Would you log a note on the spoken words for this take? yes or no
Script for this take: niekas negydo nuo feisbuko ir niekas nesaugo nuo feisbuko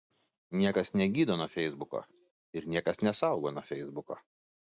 no